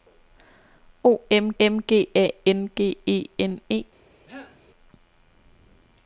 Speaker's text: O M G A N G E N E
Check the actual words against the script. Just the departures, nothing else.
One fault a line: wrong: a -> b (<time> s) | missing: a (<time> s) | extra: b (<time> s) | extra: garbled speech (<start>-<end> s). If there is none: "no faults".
extra: M (1.6 s)